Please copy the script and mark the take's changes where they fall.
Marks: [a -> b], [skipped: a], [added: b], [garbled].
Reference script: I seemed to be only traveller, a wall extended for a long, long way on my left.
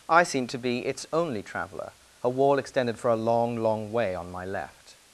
I seemed to be [added: its] only traveller, a wall extended for a long, long way on my left.